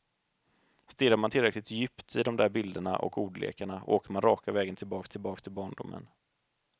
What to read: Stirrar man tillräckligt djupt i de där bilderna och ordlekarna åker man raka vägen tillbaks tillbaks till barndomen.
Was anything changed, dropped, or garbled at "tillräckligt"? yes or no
no